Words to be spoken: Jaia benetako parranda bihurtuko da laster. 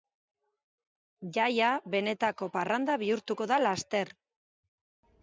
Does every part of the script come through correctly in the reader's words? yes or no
yes